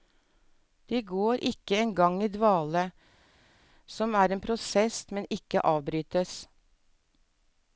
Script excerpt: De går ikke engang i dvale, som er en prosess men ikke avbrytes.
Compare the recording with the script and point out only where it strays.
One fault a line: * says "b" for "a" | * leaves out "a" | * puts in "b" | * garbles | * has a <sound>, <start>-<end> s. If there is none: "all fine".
all fine